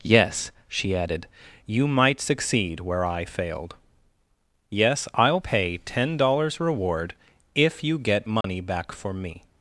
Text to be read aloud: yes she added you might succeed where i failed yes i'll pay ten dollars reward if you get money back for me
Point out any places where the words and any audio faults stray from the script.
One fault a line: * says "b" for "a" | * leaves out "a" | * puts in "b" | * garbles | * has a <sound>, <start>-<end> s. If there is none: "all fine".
* has a dropout, 8.4-8.4 s